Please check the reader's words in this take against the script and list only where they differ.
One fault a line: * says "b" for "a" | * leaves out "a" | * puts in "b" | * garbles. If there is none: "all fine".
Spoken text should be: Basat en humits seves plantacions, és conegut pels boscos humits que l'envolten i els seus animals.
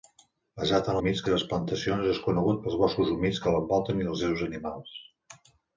all fine